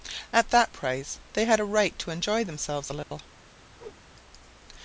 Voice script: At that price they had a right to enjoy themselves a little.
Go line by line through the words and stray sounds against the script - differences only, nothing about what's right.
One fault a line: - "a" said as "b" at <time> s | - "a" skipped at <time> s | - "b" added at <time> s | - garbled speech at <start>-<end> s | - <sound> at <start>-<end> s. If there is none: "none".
- dropout at 3.0-3.1 s
- whoosh at 3.7-4.0 s